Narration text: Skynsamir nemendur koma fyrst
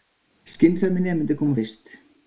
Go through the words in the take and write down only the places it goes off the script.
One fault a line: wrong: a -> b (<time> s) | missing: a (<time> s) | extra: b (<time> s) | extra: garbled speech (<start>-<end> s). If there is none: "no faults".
no faults